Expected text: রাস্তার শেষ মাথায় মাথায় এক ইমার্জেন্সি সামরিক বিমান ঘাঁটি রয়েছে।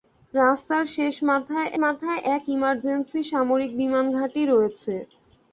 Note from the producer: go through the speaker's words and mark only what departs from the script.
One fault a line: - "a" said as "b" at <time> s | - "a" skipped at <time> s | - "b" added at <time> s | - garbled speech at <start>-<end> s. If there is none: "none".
none